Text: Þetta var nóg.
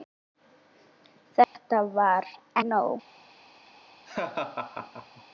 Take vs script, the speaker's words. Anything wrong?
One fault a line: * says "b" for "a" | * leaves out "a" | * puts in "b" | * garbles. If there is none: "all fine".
all fine